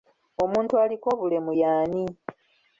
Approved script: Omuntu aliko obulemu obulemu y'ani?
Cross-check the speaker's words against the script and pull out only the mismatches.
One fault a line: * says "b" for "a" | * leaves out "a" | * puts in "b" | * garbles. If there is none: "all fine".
* leaves out "obulemu"